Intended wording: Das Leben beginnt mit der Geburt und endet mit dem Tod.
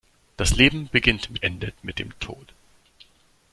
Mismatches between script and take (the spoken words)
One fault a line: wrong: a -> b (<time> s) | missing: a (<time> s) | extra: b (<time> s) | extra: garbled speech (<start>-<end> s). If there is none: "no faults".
missing: der Geburt und (1.4 s)